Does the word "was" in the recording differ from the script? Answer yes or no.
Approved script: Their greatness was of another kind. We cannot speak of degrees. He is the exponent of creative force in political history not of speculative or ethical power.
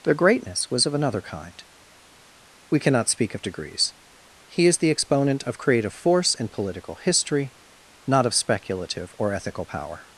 no